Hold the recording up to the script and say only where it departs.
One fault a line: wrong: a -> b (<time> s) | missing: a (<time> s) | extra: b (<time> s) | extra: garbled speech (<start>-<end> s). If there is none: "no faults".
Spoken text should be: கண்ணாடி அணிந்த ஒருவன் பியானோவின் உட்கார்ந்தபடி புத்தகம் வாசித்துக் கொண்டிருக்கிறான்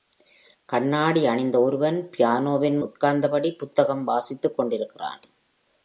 no faults